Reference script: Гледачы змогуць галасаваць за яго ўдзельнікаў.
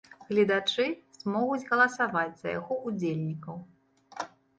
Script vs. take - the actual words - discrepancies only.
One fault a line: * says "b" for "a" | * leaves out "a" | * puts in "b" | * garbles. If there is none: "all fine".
all fine